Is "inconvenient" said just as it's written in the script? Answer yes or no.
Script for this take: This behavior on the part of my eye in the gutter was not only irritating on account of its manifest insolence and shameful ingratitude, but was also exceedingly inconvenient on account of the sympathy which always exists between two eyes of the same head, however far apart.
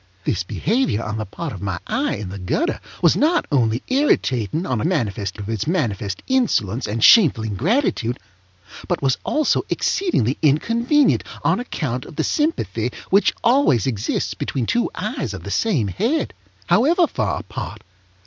yes